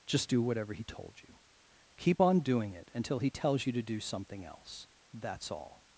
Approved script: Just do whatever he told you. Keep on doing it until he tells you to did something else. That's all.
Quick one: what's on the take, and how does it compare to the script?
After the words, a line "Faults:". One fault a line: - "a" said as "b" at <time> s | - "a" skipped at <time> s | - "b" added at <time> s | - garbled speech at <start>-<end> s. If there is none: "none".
Just do whatever he told you. Keep on doing it until he tells you to do something else. That's all.
Faults:
- "did" said as "do" at 3.8 s